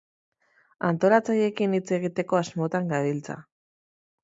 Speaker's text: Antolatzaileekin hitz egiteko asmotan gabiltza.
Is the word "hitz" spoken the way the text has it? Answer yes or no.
yes